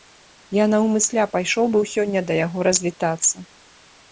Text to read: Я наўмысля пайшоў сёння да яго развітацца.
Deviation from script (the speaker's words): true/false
true